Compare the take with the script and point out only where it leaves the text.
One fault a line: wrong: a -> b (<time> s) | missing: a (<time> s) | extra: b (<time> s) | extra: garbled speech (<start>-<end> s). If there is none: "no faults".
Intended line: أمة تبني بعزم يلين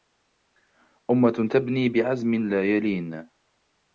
extra: لا (2.5 s)